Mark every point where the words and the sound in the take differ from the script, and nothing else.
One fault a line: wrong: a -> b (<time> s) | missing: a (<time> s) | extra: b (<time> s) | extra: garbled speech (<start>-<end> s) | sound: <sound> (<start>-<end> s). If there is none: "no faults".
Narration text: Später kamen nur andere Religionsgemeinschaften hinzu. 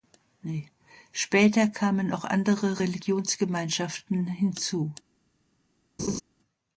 wrong: nur -> auch (2.1 s)
sound: laugh (6.0-6.2 s)